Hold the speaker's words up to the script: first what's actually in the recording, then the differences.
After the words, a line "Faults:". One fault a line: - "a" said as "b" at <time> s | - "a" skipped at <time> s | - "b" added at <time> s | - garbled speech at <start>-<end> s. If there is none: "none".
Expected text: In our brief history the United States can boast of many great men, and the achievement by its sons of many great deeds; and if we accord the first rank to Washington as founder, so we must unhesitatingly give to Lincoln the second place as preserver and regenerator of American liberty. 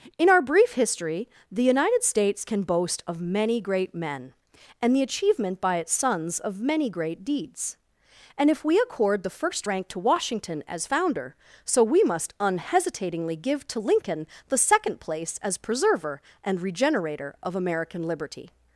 In our brief history the United States can boast of many great men, and the achievement by its sons of many great deeds; and if we accord the first rank to Washington as founder, so we must unhesitatingly give to Lincoln the second place as preserver and regenerator of American liberty.
Faults:
none